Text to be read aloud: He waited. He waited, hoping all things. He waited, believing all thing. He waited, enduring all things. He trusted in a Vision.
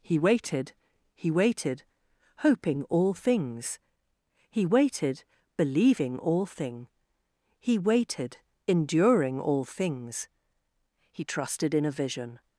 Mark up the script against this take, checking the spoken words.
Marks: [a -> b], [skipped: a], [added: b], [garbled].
He waited. He waited, hoping all things. He waited, believing all thing. He waited, enduring all things. He trusted in a Vision.